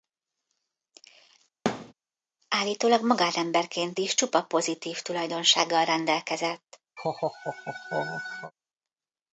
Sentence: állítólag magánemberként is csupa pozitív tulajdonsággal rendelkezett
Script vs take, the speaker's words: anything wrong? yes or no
no